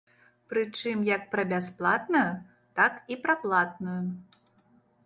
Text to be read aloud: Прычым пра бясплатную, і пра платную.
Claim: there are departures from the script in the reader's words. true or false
true